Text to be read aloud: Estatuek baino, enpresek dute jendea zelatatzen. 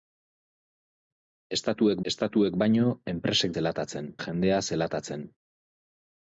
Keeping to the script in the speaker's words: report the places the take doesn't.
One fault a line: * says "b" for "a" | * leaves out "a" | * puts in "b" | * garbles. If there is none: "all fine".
* puts in "estatuek"
* says "zelatatzen" for "dute"